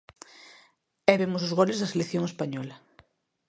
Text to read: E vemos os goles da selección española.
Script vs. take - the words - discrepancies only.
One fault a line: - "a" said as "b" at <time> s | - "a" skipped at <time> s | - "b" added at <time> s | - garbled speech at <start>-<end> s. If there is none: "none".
none